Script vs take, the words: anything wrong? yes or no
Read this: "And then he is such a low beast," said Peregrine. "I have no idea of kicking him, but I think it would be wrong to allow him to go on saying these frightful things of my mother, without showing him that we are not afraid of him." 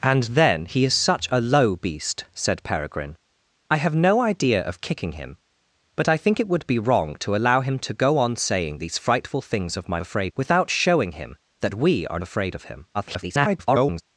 yes